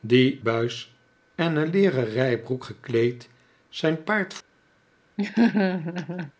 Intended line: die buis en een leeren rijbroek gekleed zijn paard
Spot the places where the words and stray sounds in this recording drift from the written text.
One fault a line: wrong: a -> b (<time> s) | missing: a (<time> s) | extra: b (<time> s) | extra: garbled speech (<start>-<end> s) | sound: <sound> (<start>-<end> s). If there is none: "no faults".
sound: laugh (5.2-6.3 s)